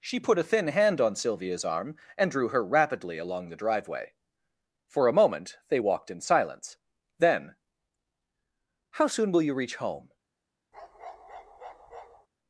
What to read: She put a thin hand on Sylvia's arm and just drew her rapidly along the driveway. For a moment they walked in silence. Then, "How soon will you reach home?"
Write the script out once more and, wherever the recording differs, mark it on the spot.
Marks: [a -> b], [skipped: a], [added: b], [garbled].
She put a thin hand on Sylvia's arm and [skipped: just] drew her rapidly along the driveway. For a moment they walked in silence. Then, "How soon will you reach home?"